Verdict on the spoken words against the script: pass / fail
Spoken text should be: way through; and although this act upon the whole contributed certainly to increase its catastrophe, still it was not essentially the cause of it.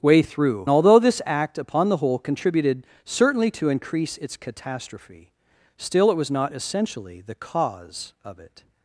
fail